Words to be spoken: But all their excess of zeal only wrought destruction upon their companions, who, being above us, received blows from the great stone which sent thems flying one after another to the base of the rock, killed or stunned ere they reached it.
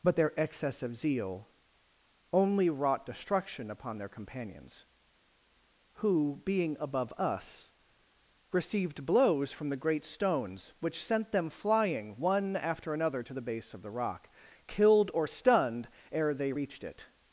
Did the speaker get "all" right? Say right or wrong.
wrong